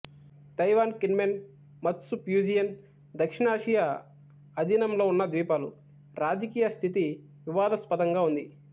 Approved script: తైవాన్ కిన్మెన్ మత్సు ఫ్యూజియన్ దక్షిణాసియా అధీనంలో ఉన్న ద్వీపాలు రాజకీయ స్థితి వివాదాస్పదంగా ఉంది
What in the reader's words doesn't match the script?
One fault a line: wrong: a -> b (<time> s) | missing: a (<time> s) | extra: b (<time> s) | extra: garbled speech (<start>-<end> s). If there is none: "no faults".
no faults